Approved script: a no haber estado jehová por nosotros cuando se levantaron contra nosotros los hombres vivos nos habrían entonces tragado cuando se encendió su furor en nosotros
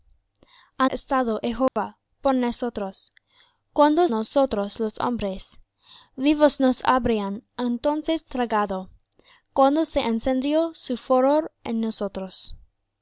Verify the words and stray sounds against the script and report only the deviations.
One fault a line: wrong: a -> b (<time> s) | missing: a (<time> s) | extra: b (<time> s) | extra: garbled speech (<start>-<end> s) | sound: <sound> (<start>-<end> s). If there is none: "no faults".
missing: no haber (0.9 s)
sound: dropout (1.7-1.8 s)
missing: se levantaron contra (4.1 s)